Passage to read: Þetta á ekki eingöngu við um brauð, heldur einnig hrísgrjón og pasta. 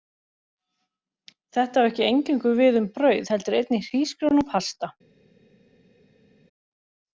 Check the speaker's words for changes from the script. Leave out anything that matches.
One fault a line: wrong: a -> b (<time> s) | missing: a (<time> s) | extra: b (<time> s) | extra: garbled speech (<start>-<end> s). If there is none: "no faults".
no faults